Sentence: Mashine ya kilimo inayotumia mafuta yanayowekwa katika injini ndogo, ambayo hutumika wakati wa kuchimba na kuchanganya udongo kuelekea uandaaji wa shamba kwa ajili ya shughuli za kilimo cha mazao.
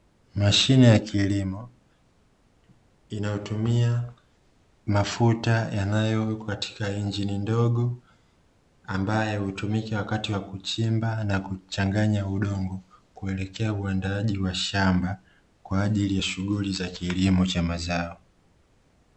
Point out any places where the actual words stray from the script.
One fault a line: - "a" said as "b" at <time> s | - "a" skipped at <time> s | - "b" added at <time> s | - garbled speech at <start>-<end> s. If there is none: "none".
none